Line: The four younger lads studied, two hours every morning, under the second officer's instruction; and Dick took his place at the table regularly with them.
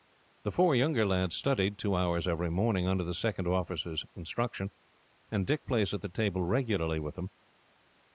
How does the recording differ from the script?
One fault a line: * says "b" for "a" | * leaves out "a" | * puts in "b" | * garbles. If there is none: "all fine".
* leaves out "took his"